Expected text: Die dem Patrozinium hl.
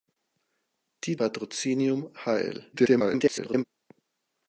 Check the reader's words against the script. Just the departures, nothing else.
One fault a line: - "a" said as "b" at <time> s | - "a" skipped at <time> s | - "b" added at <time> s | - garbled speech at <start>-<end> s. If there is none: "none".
- "dem" skipped at 1.1 s
- garbled speech at 2.7-3.7 s